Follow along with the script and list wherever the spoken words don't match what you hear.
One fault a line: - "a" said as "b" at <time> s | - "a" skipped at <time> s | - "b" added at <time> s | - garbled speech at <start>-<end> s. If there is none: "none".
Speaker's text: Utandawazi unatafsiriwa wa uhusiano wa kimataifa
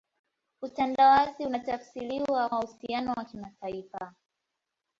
none